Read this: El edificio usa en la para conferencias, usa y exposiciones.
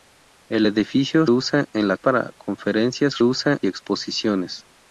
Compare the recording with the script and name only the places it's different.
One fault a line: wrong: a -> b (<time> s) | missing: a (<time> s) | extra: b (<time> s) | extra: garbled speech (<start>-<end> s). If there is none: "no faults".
no faults